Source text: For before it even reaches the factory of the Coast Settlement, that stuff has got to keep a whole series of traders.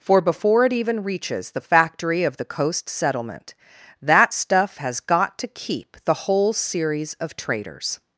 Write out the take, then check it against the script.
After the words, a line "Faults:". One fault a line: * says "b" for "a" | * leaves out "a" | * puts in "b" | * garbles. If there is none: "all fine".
For before it even reaches the factory of the Coast Settlement, that stuff has got to keep the whole series of traders.
Faults:
* says "the" for "a"